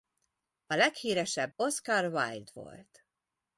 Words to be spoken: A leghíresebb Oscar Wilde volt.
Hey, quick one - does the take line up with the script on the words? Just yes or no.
yes